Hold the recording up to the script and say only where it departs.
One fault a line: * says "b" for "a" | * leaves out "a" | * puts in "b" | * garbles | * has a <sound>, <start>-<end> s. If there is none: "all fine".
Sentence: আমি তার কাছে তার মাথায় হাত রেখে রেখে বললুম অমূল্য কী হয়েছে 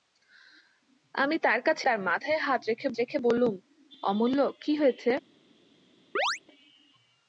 * has a chirp, 6.2-6.4 s